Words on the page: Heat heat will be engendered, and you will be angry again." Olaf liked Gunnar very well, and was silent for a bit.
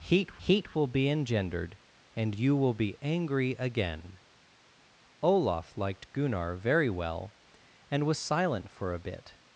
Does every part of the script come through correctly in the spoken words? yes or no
yes